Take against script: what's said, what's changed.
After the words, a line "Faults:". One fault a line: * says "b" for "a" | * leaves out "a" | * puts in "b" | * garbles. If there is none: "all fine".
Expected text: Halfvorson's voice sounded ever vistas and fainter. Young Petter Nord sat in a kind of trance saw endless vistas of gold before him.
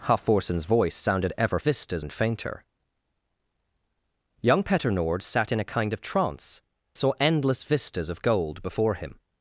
Halfvorson's voice sounded ever vistas and fainter. Young Petter Nord sat in a kind of trance saw endless vistas of gold before him.
Faults:
all fine